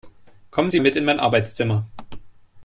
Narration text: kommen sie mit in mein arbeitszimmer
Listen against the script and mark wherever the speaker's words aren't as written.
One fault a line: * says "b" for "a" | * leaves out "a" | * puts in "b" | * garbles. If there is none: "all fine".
all fine